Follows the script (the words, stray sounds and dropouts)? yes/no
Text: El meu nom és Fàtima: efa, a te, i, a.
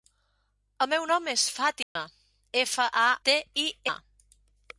no